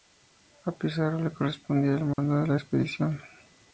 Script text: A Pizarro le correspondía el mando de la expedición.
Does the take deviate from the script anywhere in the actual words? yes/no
no